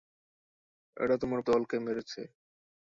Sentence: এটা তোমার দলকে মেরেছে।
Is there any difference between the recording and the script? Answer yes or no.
no